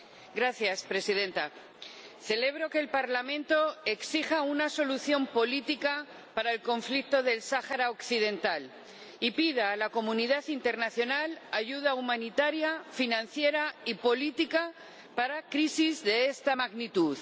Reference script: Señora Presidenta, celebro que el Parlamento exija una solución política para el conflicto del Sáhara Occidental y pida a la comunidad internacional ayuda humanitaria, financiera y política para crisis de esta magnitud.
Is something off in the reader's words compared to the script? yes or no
no